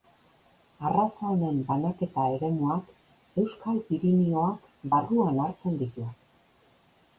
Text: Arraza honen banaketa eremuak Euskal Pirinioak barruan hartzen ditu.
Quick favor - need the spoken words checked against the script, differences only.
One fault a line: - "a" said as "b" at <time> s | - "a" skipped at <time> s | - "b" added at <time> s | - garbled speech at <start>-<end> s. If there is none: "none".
none